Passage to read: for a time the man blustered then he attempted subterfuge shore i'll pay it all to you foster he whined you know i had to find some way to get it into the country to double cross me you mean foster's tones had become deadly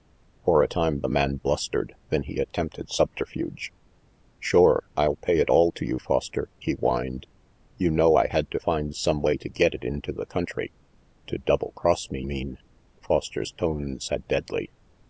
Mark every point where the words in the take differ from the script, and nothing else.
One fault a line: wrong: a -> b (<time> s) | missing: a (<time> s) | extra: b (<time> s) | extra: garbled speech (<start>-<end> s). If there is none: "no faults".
missing: you (12.2 s)
missing: become (14.3 s)